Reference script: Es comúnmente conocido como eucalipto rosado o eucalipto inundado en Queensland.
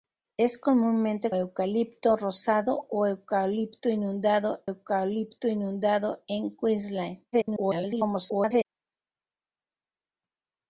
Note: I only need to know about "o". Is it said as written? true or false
true